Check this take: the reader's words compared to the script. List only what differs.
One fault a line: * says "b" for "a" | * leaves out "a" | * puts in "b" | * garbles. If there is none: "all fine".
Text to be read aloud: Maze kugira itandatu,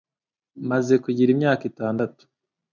* puts in "imyaka"